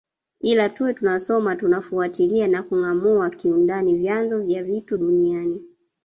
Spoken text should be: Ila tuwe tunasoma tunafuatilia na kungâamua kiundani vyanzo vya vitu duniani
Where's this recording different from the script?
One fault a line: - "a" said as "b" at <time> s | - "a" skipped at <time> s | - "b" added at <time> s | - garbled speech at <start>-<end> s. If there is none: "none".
none